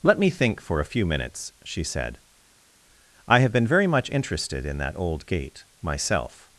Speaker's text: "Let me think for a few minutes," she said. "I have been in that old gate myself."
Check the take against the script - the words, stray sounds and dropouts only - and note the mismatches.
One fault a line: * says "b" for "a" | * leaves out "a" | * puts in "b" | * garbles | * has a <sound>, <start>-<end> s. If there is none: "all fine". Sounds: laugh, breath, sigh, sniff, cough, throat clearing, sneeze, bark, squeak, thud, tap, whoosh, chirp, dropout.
* puts in "very much interested"